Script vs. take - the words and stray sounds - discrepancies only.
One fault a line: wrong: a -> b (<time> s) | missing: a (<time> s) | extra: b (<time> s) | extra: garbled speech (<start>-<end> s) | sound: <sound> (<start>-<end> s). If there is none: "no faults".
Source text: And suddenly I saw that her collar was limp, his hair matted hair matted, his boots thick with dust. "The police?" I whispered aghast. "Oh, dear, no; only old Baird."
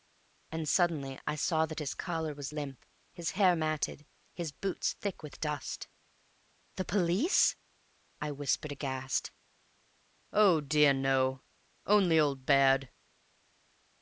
wrong: her -> his (1.8 s)
missing: hair matted (4.0 s)